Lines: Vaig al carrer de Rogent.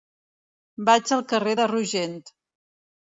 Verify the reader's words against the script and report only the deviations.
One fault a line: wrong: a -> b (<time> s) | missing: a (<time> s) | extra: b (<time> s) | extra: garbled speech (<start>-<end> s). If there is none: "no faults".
no faults